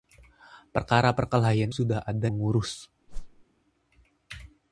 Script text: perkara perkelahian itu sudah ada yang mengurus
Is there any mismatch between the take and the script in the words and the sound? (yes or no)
yes